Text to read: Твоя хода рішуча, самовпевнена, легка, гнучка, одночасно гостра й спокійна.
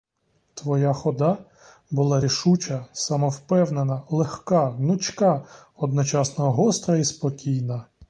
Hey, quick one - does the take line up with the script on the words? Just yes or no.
no